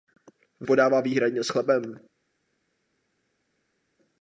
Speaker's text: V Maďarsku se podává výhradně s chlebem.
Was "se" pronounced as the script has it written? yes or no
no